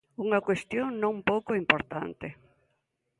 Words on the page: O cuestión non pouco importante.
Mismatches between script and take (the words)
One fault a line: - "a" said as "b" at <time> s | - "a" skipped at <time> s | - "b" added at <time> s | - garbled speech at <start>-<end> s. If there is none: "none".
- "O" said as "Unha" at 0.2 s